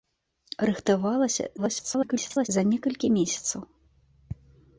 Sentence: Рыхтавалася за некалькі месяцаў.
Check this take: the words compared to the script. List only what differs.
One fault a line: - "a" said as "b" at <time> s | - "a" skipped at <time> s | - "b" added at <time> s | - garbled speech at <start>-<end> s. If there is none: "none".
- garbled speech at 1.6-2.5 s